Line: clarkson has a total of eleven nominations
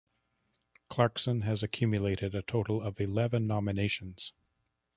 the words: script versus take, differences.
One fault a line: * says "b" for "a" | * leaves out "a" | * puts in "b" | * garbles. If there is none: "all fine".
* puts in "accumulated"